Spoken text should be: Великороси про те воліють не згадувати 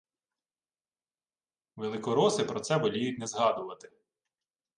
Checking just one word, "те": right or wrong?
wrong